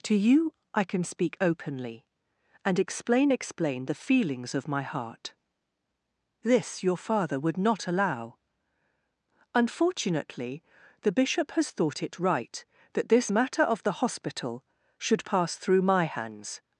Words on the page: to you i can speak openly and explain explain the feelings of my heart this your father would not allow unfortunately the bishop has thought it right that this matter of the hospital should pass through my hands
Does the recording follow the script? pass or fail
pass